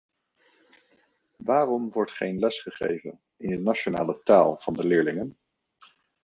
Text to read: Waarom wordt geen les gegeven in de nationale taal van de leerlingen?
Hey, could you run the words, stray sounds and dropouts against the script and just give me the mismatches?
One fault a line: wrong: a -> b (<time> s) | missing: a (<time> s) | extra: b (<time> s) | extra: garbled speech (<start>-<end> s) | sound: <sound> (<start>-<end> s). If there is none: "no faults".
no faults